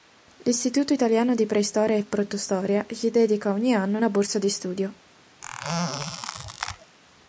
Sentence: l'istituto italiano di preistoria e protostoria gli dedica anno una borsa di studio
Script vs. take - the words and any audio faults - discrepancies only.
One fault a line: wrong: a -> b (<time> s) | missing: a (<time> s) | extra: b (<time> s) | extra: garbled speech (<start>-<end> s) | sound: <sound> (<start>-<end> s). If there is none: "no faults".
extra: ogni (3.5 s)
sound: squeak (5.4-7.0 s)